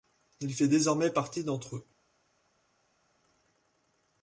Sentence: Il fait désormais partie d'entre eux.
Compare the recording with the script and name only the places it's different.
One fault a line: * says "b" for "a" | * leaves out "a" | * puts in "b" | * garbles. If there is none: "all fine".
all fine